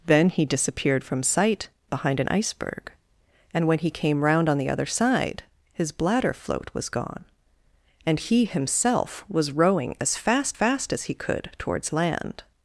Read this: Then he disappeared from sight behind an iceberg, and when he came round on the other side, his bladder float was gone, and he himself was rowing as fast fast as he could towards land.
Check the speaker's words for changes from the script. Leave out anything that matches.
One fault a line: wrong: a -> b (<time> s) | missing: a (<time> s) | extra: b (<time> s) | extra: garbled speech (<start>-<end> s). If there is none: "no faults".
no faults